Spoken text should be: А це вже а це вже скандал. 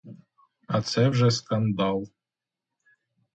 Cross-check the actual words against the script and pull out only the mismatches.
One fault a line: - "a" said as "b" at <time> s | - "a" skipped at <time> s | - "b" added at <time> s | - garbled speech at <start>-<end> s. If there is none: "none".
- "а це вже" skipped at 1.3 s